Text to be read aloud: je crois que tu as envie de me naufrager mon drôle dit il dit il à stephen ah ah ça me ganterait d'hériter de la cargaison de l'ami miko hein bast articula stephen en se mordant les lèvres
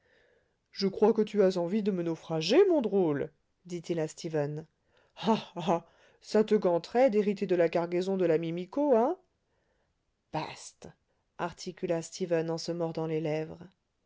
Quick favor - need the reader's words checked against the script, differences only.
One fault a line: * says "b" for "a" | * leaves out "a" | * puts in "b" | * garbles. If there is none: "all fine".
* leaves out "dit il"
* says "te" for "me"